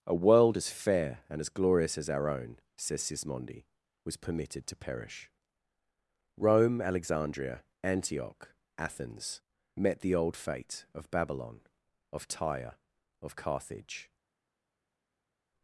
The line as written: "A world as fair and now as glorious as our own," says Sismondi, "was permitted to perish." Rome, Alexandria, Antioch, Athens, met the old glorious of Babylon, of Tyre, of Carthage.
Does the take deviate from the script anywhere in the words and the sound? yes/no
yes